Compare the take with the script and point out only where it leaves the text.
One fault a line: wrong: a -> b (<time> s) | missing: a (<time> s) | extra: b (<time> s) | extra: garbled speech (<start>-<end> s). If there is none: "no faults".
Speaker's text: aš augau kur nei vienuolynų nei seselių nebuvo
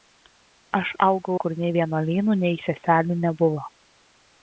no faults